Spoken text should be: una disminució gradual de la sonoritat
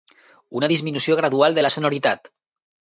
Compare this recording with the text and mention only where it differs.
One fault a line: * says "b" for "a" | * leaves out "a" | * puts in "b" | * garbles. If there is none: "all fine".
all fine